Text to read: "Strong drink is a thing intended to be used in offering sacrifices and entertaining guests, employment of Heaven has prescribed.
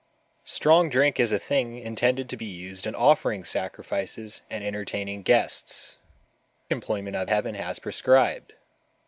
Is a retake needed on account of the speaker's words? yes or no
no